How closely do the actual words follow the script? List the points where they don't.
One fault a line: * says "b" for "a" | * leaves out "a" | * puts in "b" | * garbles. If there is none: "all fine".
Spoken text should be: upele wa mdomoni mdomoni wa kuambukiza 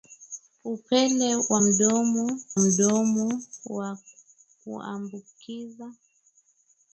all fine